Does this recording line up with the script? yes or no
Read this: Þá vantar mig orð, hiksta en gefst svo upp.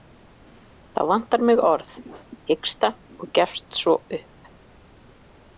no